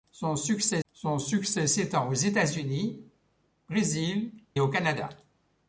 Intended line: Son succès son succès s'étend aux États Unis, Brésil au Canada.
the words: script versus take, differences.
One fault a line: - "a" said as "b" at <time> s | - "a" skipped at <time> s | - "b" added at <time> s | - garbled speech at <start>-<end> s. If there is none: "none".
none